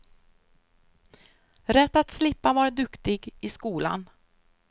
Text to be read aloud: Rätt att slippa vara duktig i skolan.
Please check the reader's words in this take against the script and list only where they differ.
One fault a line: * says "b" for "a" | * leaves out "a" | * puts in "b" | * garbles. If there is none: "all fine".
all fine